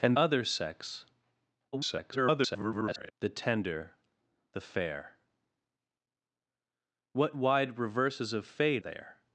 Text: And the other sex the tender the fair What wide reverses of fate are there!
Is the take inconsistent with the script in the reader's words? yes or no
yes